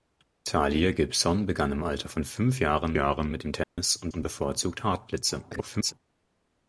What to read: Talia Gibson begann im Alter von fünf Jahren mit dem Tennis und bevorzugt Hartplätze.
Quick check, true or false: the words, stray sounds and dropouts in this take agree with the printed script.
false